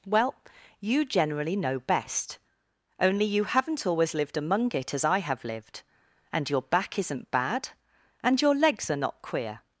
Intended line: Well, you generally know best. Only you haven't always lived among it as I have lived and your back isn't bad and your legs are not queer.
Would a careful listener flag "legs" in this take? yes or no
no